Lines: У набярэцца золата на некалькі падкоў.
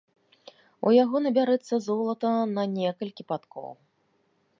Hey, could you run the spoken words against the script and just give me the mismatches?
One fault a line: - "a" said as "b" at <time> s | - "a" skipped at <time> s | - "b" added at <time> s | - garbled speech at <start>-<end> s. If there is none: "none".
- "яго" added at 1.0 s